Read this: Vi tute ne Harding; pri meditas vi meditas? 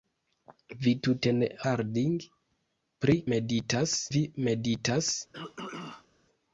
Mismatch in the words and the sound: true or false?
true